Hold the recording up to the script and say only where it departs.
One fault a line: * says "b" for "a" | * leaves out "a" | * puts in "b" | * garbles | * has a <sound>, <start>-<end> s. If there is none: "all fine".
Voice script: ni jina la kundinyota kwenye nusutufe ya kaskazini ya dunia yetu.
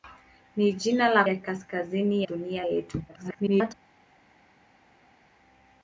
* leaves out "kundinyota kwenye nusutufe"
* leaves out "ya"
* garbles